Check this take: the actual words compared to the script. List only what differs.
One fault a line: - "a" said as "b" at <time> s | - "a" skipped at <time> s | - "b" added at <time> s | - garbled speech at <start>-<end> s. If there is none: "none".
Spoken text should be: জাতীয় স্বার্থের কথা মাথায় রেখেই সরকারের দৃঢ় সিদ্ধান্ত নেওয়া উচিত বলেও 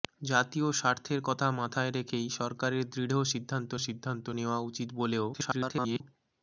- "সিদ্ধান্ত" added at 3.8 s
- garbled speech at 5.3-6.0 s